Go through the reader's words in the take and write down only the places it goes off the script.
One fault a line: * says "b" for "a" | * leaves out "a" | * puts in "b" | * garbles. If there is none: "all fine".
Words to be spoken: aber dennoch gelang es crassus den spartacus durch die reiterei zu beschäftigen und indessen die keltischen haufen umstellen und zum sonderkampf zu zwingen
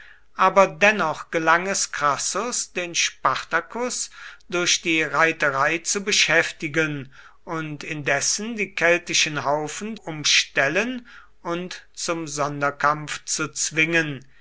all fine